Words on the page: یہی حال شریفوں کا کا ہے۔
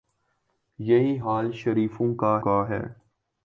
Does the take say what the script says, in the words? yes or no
yes